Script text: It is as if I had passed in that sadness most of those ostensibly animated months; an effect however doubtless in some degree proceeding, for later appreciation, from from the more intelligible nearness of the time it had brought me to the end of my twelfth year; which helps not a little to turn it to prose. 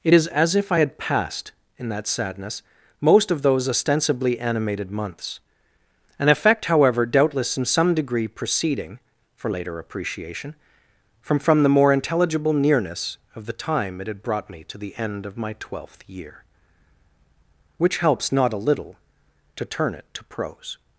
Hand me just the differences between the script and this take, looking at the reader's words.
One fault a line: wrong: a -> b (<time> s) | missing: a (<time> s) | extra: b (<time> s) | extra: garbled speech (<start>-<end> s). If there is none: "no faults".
no faults